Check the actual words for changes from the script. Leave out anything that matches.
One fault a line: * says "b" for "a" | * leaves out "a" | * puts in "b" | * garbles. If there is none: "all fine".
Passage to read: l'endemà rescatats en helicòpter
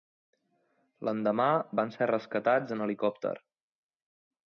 * puts in "van ser"